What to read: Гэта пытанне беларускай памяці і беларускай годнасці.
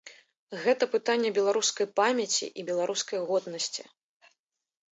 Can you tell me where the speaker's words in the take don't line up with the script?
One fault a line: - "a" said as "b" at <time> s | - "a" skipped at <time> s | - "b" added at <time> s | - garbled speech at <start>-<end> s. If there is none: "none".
none